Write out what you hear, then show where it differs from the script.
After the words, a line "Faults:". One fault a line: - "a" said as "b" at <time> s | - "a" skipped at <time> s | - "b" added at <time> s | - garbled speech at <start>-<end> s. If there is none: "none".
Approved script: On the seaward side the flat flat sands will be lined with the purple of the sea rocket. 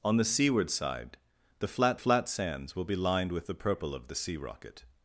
On the seaward side the flat flat sands will be lined with the purple of the sea rocket.
Faults:
none